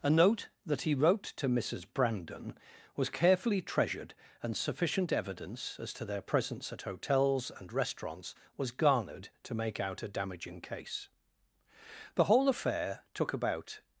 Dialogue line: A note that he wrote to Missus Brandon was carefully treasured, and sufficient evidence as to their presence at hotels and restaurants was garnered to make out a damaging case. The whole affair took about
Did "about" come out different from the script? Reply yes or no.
no